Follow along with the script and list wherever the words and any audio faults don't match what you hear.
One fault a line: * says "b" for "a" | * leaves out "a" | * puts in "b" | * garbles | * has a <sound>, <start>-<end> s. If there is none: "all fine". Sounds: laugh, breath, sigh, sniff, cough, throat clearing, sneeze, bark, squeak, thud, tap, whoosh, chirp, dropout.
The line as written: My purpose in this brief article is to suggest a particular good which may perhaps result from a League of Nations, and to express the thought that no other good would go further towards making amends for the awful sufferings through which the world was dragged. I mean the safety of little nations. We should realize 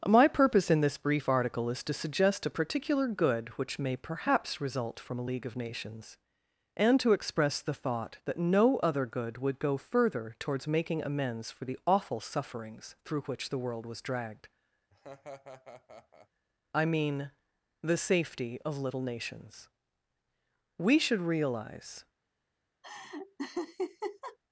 * has a laugh, 14.9-16.3 s
* has a laugh, 22.8-24.4 s